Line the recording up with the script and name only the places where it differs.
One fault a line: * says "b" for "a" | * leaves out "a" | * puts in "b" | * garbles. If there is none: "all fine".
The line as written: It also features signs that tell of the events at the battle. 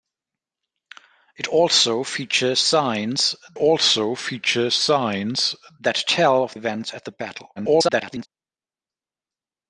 * puts in "also features signs"
* leaves out "the"
* garbles